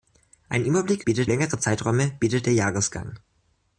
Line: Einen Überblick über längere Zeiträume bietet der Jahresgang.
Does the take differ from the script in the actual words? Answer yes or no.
yes